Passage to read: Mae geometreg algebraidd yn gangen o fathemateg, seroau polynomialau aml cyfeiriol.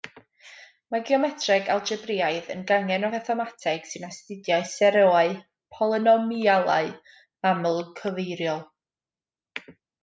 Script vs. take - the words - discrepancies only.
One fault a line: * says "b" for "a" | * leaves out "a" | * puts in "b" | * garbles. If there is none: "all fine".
* puts in "sy'n astudio"